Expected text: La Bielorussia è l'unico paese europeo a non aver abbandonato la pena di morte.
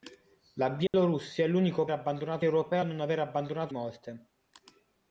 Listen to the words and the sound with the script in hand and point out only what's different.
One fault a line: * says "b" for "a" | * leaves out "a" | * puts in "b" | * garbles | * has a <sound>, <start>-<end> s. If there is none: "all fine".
* has a dropout, 0.9-0.9 s
* says "abbandonato" for "paese"
* leaves out "la pena di"